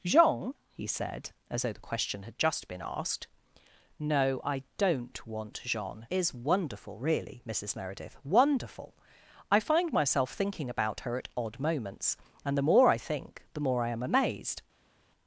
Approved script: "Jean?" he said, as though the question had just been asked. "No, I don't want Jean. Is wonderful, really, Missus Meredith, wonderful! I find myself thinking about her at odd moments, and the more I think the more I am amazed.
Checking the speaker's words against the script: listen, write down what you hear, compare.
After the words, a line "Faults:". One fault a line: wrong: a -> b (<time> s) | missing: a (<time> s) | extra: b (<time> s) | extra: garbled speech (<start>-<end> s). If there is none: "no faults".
"Jean?" he said, as though the question had just been asked. "No, I don't want Jean. Is wonderful, really, Missus Meredith, wonderful! I find myself thinking about her at odd moments, and the more I think the more I am amazed.
Faults:
no faults